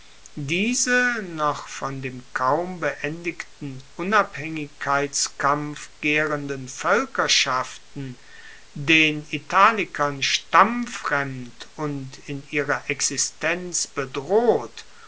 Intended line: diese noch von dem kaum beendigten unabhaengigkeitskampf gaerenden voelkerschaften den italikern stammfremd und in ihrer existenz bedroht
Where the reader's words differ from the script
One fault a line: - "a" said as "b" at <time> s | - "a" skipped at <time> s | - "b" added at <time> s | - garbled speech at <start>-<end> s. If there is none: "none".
none